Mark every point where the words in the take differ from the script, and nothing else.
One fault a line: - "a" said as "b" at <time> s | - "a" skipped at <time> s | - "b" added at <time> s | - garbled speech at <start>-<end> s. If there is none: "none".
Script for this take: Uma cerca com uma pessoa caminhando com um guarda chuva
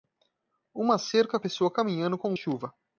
- "com uma" skipped at 1.4 s
- "guarda" skipped at 2.3 s